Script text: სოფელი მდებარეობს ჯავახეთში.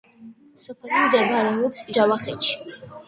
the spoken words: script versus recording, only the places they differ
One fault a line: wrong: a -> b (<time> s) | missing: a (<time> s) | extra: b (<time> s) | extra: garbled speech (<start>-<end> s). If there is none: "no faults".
no faults